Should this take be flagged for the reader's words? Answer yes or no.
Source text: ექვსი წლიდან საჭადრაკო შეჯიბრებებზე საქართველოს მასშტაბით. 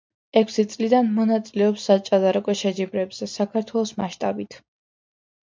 yes